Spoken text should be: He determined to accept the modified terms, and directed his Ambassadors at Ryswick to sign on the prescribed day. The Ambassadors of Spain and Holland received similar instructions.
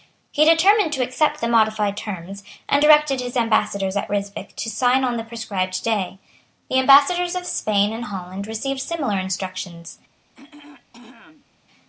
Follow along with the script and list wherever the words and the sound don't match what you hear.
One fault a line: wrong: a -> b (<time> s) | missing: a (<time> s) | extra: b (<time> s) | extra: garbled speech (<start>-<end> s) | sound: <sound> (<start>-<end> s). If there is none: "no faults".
sound: throat clearing (10.3-11.5 s)